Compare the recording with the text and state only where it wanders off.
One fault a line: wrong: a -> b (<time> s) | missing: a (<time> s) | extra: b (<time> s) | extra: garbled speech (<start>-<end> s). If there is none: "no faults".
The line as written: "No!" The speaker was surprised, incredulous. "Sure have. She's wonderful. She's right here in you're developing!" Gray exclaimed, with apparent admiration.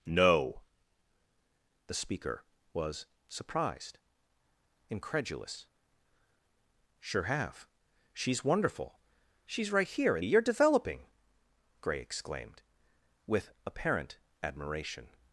no faults